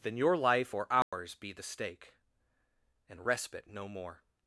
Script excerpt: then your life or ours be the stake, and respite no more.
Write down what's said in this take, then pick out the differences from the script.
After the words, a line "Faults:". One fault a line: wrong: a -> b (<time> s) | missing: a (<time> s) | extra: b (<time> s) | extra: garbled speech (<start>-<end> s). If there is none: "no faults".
then your life or ours be the stake, and respite no more.
Faults:
no faults